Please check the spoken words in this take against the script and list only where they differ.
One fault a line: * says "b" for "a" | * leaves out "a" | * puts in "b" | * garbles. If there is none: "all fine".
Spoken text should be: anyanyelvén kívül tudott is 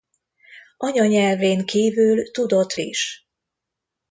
all fine